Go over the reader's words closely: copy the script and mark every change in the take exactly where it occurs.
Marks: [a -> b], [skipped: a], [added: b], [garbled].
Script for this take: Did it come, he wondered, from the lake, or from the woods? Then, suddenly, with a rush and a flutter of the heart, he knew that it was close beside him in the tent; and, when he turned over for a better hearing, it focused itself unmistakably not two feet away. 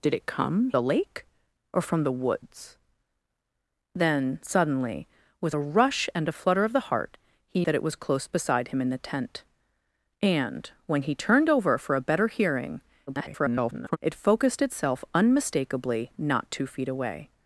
Did it come, [skipped: he wondered, from] the lake, or from the woods? Then, suddenly, with a rush and a flutter of the heart, he [skipped: knew] that it was close beside him in the tent; and, when he turned over for a better hearing, [garbled] it focused itself unmistakably not two feet away.